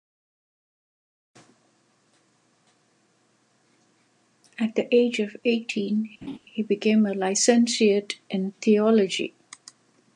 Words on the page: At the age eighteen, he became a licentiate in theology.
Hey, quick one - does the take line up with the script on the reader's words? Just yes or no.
no